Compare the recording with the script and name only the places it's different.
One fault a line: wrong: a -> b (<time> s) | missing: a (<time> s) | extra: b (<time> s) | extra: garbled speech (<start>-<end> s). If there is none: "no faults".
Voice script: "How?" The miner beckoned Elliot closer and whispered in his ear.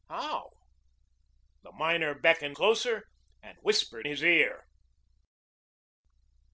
missing: Elliot (2.6 s)
missing: in (4.1 s)